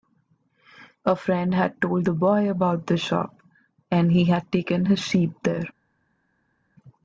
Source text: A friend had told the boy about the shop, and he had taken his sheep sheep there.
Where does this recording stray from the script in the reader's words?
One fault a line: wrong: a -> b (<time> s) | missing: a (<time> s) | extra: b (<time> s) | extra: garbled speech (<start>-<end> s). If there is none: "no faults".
missing: sheep (5.3 s)